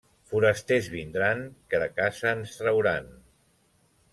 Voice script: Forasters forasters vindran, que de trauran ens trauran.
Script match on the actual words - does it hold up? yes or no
no